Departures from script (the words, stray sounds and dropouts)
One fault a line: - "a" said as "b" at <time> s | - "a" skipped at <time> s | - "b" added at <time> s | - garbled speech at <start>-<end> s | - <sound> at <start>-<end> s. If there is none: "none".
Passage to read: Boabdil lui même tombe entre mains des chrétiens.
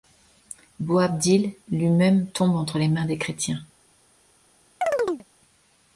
- "les" added at 2.8 s
- chirp at 4.8-5.3 s